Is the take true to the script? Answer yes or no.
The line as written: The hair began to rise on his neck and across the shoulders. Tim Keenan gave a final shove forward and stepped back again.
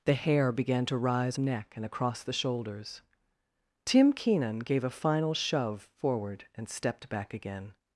no